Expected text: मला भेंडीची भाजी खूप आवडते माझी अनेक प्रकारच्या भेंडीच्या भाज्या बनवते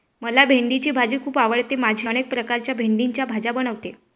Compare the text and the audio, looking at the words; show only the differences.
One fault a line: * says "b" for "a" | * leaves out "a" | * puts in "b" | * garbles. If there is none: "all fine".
all fine